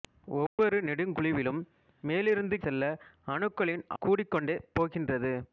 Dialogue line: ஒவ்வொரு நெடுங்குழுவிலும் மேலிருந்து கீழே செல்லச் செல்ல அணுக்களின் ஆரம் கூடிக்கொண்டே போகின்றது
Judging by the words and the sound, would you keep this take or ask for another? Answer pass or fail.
fail